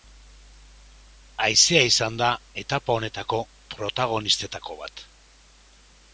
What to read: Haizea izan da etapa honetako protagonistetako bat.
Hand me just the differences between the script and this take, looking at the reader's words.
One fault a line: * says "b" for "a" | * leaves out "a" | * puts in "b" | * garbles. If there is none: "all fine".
all fine